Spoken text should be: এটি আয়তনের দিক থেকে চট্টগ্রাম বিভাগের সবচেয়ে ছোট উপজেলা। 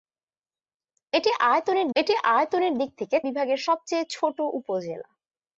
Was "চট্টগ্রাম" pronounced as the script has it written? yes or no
no